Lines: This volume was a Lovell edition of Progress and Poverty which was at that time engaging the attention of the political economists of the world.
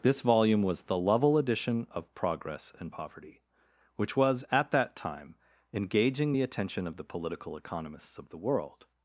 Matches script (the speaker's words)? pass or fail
fail